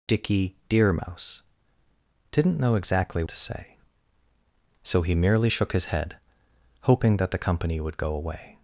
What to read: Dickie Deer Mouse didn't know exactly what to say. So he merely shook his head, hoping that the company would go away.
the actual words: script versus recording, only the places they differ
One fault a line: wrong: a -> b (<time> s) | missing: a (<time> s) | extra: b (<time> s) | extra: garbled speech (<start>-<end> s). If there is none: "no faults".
missing: what (3.2 s)